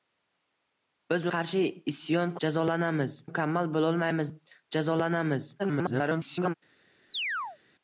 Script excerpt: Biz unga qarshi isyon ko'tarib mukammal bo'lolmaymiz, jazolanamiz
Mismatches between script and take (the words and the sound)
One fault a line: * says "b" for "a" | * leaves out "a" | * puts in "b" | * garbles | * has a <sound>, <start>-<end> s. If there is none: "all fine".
* leaves out "unga"
* says "jazolanamiz" for "ko'tarib"
* garbles
* has a chirp, 7.1-7.6 s